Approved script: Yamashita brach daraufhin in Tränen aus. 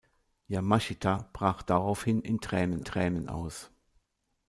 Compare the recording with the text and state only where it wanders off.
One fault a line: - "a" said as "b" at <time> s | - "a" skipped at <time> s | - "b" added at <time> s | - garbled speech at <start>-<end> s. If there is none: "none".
- "Tränen" added at 2.8 s